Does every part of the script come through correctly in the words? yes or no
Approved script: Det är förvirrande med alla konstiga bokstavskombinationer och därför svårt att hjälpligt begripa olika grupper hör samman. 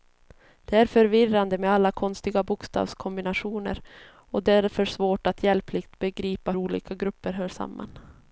yes